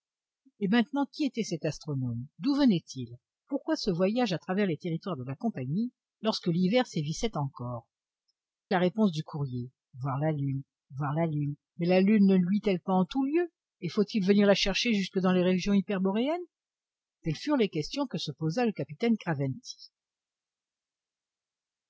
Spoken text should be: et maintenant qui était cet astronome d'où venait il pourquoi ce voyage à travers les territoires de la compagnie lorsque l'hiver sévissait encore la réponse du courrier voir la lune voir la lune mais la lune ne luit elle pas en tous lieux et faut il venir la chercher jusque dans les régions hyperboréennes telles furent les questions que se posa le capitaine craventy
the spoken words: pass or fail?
pass